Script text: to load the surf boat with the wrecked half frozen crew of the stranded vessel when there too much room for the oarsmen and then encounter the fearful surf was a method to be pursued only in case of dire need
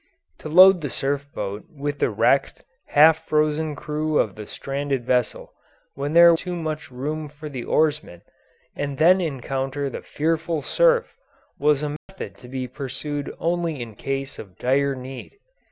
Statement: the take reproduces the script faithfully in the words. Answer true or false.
true